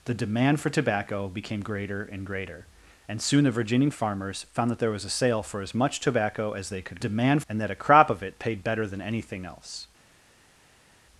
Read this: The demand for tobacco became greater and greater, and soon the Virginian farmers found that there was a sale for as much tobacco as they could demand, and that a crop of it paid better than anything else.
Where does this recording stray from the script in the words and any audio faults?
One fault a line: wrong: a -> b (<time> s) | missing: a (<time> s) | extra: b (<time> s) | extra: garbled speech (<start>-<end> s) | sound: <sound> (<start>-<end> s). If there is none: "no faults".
no faults